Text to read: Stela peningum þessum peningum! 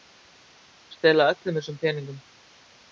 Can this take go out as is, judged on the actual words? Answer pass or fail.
fail